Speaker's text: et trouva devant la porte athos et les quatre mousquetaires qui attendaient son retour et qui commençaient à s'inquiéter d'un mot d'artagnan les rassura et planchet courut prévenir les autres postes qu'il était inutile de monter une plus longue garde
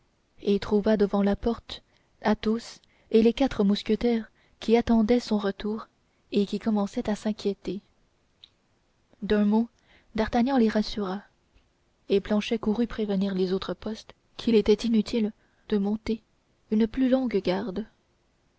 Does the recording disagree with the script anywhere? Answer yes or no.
no